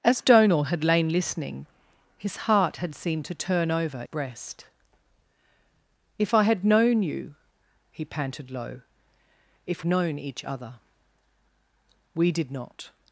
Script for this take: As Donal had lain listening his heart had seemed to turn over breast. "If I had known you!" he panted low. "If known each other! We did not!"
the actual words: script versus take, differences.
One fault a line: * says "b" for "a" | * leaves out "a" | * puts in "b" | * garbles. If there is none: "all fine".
all fine